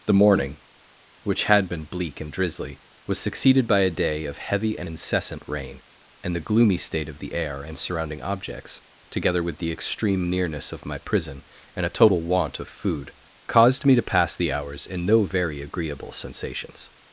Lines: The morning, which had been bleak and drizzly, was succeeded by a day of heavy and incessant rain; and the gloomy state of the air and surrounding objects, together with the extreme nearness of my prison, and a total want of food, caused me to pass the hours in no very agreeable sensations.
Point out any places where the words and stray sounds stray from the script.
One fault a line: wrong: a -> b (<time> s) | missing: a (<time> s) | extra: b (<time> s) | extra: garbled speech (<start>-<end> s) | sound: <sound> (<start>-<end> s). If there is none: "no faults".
no faults